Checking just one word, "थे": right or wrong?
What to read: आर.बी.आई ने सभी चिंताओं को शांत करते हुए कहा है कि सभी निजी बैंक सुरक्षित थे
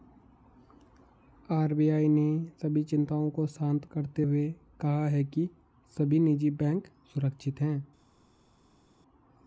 wrong